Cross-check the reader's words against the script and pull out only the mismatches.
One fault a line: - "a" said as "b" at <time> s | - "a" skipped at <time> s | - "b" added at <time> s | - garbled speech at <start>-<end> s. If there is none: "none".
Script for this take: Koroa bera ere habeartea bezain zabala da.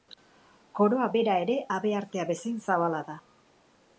none